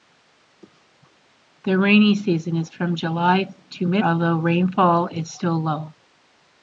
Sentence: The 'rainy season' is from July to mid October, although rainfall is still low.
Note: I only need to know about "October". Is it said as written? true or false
false